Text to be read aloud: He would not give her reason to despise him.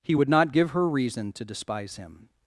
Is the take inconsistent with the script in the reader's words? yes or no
no